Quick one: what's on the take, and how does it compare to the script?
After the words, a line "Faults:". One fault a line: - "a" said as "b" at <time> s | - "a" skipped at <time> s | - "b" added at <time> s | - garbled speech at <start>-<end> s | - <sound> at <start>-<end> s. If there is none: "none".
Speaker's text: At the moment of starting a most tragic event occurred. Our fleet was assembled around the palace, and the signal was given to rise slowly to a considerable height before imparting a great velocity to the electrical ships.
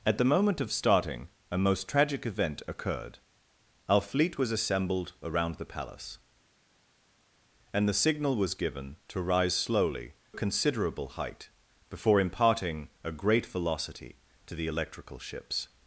At the moment of starting a most tragic event occurred. Our fleet was assembled around the palace, and the signal was given to rise slowly a considerable height before imparting a great velocity to the electrical ships.
Faults:
- "to" skipped at 10.1 s